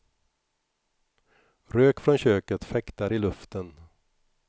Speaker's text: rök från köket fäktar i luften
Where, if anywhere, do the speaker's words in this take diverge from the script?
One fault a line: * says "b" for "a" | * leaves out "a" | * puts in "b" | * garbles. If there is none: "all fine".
all fine